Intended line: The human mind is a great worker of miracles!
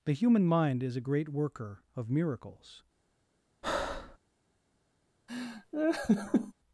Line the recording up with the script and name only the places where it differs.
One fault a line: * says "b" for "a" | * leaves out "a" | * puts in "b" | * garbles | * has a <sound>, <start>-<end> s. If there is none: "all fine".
* has a breath, 3.6-4.2 s
* has a laugh, 5.3-6.5 s